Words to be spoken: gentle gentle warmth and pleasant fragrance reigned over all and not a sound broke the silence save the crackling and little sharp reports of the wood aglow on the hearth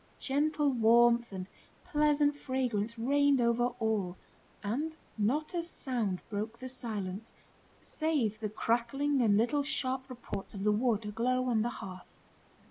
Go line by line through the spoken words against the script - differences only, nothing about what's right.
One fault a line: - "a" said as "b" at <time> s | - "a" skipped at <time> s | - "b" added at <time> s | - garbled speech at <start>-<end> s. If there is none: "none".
- "gentle" skipped at 0.7 s